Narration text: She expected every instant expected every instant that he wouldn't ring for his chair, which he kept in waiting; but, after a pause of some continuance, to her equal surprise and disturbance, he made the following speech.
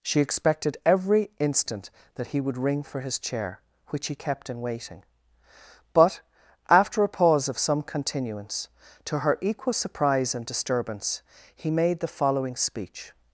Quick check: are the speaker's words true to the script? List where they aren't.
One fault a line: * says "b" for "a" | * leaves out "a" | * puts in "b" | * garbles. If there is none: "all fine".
* leaves out "expected every instant"
* says "would" for "wouldn't"